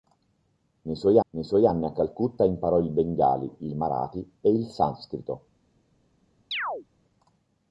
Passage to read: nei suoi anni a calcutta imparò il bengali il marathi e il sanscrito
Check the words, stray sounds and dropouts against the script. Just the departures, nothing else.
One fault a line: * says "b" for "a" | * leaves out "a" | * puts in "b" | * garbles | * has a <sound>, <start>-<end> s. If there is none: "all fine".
* puts in "nei suoi"
* has a chirp, 6.5-6.9 s